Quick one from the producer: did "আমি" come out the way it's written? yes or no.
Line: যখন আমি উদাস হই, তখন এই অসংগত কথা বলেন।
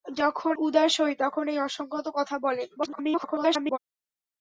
no